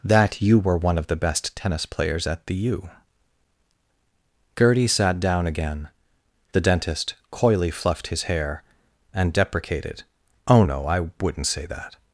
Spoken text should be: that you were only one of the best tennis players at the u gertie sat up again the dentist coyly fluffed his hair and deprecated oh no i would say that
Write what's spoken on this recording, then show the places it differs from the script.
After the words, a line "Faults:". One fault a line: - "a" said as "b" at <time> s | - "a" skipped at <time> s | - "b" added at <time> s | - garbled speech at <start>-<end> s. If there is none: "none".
that you were one of the best tennis players at the u gertie sat down again the dentist coyly fluffed his hair and deprecated oh no i wouldn't say that
Faults:
- "only" skipped at 0.8 s
- "up" said as "down" at 5.2 s
- "would" said as "wouldn't" at 11.2 s